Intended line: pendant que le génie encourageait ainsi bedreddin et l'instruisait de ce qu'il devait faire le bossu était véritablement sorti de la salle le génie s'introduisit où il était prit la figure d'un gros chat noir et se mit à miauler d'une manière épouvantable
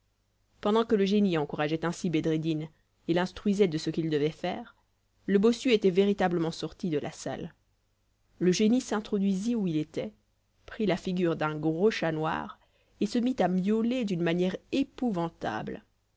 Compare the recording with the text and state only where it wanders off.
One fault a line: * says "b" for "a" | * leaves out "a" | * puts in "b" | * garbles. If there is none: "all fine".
all fine